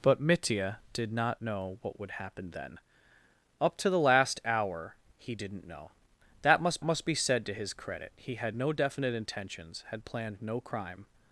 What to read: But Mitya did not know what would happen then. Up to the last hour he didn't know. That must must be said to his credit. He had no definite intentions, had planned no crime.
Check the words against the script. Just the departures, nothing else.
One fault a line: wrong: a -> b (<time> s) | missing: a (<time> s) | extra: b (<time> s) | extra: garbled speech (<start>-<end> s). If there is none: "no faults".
no faults